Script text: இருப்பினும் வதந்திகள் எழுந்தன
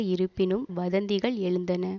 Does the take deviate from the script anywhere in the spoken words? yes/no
no